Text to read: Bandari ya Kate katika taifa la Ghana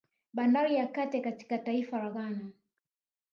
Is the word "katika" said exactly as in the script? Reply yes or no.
yes